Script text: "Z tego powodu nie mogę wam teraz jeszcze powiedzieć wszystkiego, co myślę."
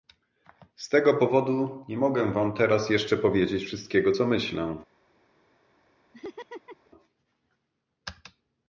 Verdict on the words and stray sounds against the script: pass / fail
fail